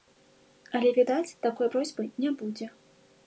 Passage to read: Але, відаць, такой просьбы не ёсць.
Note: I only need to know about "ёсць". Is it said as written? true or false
false